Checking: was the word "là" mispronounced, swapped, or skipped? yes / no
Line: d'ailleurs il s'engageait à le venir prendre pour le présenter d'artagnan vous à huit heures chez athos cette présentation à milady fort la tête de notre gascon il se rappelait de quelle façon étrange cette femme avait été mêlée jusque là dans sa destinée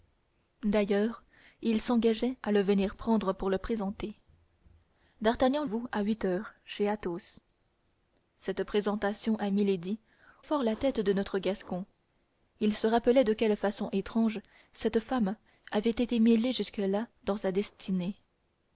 no